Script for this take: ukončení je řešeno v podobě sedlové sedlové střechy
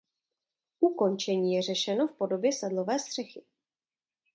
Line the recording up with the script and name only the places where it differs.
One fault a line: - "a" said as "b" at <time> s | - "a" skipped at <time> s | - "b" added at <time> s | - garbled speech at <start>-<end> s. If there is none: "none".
- "sedlové" skipped at 3.0 s